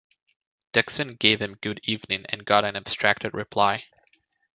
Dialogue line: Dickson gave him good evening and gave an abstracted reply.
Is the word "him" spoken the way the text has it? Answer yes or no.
yes